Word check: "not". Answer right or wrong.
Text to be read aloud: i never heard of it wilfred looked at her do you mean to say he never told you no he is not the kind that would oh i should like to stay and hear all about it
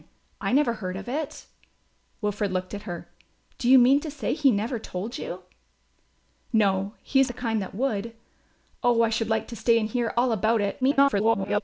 wrong